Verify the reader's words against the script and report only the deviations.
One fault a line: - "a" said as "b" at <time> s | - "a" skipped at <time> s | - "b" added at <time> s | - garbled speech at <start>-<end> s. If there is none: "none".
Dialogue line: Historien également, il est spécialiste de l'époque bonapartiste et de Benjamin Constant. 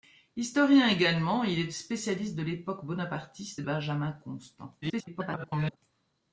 - "de" skipped at 3.6 s
- garbled speech at 4.8-5.8 s